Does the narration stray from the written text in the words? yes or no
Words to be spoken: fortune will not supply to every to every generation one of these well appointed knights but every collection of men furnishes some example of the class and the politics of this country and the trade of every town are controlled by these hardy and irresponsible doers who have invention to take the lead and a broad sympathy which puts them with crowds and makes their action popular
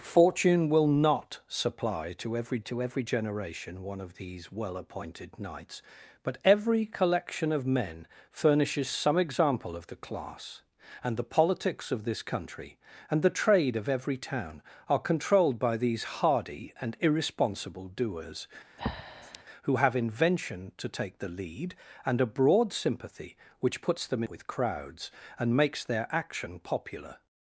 no